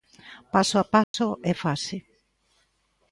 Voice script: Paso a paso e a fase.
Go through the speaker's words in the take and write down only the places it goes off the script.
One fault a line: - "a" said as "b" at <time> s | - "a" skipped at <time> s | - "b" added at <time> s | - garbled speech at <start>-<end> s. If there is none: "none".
none